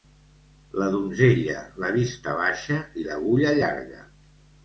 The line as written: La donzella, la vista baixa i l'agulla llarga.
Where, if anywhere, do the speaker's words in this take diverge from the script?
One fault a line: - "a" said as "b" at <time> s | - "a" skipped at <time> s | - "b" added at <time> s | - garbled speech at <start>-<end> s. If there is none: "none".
none